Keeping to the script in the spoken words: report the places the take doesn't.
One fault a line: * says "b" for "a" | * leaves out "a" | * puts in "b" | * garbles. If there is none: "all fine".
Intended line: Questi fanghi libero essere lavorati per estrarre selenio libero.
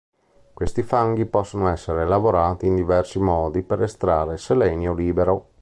* says "possono" for "libero"
* puts in "in diversi modi"